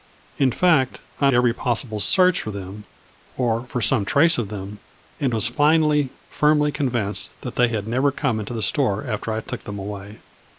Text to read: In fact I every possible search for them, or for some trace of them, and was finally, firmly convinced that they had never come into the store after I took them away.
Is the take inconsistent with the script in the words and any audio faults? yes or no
no